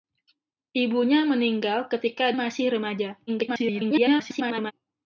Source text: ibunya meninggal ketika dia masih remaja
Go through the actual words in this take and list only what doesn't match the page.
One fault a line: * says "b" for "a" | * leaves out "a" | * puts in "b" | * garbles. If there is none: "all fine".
* leaves out "dia"
* garbles